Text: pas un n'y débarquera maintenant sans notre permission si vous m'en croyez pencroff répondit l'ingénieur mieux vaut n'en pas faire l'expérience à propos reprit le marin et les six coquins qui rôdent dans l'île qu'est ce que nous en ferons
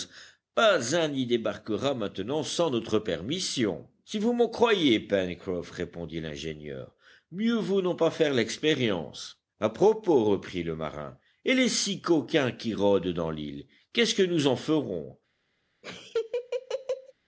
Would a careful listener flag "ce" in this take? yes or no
no